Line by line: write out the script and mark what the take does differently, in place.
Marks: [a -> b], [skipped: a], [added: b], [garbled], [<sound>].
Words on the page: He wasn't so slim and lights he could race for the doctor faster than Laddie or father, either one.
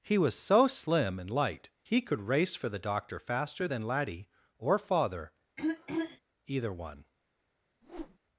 He [wasn't -> was] so slim and [lights -> light] he could race for the doctor faster than Laddie or father, [throat clearing] either one. [whoosh]